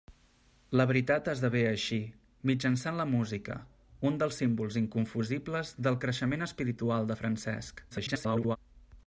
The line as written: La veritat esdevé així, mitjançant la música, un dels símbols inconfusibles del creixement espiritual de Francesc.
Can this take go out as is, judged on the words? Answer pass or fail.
fail